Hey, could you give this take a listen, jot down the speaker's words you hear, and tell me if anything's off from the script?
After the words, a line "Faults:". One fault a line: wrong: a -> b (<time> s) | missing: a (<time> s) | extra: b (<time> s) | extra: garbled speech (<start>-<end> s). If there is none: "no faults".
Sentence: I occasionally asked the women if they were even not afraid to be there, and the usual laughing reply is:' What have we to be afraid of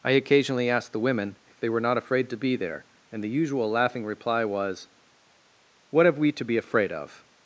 I occasionally asked the women if they were not afraid to be there, and the usual laughing reply was:' What have we to be afraid of
Faults:
missing: even (1.8 s)
wrong: is -> was (4.5 s)